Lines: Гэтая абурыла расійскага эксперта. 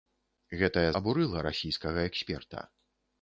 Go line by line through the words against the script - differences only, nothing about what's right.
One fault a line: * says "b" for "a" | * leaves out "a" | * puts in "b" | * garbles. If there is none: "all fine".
all fine